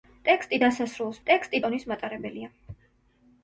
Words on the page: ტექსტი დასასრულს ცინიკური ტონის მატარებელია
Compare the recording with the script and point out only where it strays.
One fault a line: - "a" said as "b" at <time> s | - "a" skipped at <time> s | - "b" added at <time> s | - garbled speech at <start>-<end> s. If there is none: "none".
- "ცინიკური" said as "ტექსტი" at 1.3 s